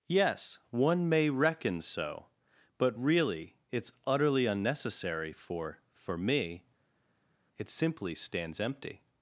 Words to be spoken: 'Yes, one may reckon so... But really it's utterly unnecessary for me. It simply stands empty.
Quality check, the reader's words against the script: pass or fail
fail